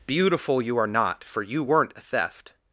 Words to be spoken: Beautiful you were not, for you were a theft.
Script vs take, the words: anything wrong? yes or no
yes